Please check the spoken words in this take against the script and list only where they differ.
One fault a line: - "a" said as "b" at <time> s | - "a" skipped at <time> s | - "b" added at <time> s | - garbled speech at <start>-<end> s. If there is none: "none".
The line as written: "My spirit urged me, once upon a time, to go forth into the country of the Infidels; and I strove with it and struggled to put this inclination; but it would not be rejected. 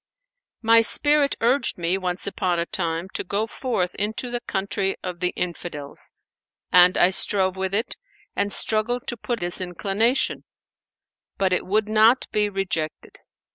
none